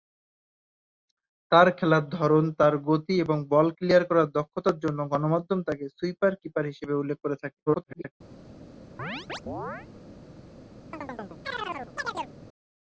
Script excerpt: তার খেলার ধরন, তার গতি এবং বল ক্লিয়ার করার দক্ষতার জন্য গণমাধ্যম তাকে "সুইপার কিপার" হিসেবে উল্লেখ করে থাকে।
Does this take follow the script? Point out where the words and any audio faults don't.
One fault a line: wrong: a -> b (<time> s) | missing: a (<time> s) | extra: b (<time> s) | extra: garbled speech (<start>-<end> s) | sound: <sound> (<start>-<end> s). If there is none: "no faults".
extra: garbled speech (7.7-8.1 s)
sound: chirp (9.0-9.9 s)
sound: chirp (10.9-12.3 s)